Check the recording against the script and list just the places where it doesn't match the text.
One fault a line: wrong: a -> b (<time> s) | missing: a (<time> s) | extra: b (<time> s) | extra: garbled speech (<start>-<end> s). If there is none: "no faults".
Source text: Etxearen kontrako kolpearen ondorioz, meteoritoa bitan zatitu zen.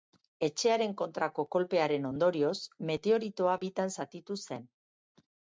no faults